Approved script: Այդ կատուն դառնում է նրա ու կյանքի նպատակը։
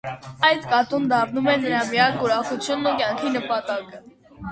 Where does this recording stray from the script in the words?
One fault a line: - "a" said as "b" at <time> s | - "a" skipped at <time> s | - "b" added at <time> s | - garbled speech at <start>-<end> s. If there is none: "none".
- "միակ ուրախությունն" added at 1.9 s